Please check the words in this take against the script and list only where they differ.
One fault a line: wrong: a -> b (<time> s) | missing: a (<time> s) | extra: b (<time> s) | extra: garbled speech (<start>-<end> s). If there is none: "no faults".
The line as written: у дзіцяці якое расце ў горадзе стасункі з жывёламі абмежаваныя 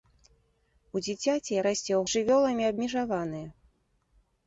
missing: якое (1.6 s)
missing: горадзе стасункі (2.0 s)